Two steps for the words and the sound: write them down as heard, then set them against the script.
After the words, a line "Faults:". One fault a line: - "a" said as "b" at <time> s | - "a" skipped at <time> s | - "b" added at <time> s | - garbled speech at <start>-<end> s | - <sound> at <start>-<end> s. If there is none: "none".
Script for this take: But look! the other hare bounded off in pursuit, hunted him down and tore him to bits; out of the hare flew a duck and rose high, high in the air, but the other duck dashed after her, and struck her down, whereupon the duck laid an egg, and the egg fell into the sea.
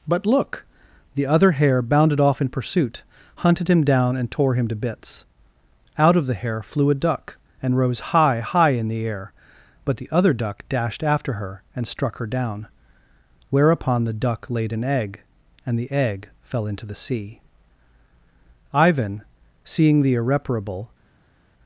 But look! the other hare bounded off in pursuit, hunted him down and tore him to bits; out of the hare flew a duck and rose high, high in the air, but the other duck dashed after her, and struck her down, whereupon the duck laid an egg, and the egg fell into the sea. Ivan, seeing the irreparable
Faults:
- "Ivan seeing the irreparable" added at 18.7 s